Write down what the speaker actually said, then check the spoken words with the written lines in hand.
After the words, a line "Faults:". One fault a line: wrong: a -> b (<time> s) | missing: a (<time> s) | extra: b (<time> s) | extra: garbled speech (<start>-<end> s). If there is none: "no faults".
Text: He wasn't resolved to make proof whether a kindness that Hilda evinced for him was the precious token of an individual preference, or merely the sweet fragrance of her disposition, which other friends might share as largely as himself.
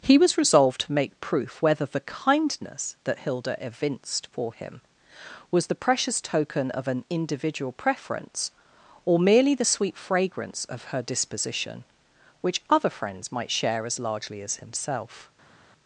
He was resolved to make proof whether the kindness that Hilda evinced for him was the precious token of an individual preference, or merely the sweet fragrance of her disposition, which other friends might share as largely as himself.
Faults:
wrong: wasn't -> was (0.2 s)
wrong: a -> the (1.8 s)